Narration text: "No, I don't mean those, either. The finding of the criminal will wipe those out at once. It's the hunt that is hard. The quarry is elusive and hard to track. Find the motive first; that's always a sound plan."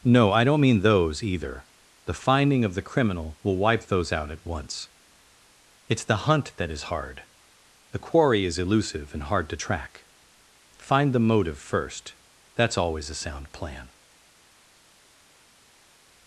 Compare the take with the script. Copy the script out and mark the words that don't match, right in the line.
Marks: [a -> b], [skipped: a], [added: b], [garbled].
"No, I don't mean those, either. The finding of the criminal will wipe those out at once. It's the hunt that is hard. The quarry is elusive and hard to track. Find the motive first; that's always a sound plan."